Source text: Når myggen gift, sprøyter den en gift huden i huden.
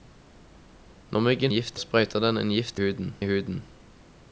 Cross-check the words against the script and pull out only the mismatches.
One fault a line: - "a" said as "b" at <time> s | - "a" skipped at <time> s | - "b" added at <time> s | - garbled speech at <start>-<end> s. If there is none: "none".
none